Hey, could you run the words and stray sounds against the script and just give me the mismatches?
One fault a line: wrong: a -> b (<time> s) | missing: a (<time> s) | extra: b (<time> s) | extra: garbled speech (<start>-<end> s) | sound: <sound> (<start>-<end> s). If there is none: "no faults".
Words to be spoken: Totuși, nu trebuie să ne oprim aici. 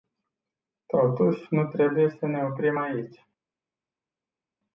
no faults